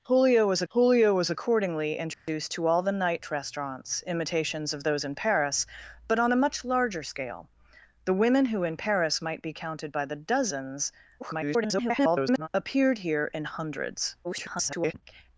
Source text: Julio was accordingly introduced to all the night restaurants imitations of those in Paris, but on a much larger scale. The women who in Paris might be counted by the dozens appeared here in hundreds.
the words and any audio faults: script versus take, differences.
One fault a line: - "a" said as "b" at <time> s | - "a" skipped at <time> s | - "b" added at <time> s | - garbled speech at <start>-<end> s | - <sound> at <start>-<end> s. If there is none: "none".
- "julio was" added at 0.7 s
- dropout at 2.1-2.3 s
- garbled speech at 11.2-12.5 s
- garbled speech at 14.2-14.9 s